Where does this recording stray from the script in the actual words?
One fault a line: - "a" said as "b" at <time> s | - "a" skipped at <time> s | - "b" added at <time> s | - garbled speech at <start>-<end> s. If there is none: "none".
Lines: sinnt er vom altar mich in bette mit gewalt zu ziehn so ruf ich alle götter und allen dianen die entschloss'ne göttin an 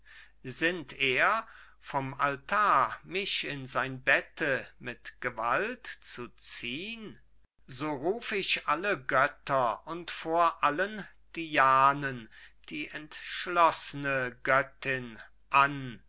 - "sein" added at 3.7 s
- "vor" added at 10.1 s